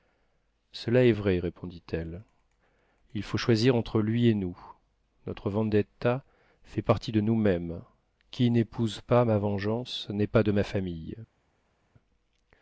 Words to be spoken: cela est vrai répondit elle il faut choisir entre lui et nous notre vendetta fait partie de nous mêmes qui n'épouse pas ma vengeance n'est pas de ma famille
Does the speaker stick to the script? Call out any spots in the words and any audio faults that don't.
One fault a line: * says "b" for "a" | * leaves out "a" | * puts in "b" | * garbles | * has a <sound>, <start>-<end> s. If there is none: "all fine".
all fine